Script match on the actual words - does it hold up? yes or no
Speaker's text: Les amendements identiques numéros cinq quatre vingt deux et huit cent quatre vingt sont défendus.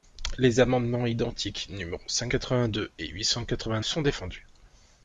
yes